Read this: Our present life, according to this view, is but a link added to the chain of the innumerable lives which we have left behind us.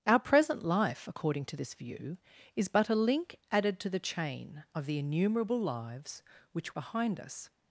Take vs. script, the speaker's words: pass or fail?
fail